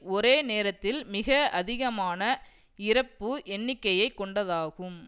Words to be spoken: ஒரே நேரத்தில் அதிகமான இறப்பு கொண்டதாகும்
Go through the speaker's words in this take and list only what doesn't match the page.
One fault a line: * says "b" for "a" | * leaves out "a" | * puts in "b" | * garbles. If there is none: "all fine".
* puts in "மிக"
* puts in "எண்ணிக்கையை"